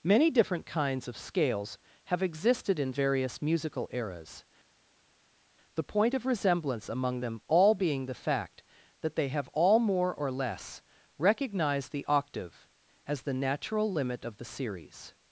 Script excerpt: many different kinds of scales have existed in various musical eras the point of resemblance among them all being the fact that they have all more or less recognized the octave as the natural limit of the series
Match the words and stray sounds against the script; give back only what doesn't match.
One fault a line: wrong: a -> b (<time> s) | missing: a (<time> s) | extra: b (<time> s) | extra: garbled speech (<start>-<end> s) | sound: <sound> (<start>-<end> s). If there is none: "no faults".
no faults